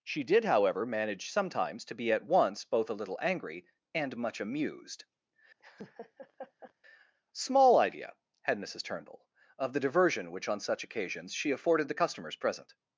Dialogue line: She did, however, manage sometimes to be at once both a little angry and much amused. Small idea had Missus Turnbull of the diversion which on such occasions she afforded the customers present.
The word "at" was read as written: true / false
true